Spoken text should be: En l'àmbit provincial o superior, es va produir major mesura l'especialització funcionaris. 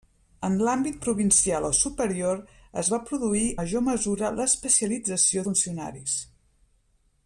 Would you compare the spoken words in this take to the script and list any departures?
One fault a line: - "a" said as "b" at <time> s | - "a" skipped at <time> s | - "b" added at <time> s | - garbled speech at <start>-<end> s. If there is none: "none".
none